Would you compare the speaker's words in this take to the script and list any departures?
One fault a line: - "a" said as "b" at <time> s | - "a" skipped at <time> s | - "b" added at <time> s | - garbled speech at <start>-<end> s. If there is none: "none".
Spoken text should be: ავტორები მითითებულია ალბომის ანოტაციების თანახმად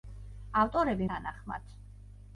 - "მითითებულია ალბომის ანოტაციების" skipped at 1.1 s